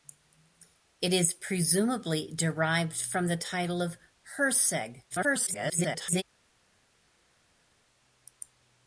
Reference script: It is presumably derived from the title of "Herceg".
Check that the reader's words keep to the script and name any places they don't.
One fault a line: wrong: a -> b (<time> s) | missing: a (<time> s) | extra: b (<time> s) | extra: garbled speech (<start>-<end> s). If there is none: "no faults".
extra: garbled speech (5.1-6.2 s)